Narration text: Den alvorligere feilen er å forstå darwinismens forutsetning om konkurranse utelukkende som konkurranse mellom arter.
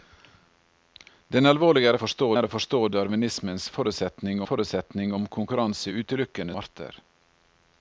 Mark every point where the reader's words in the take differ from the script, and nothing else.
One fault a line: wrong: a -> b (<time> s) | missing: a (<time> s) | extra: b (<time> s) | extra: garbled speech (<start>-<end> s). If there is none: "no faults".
wrong: feilen -> forstå (2.0 s)
extra: forutsetning (4.5 s)
missing: som konkurranse mellom (6.6 s)